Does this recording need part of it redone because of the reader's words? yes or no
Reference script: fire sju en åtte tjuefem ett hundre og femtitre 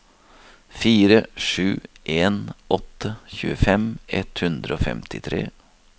no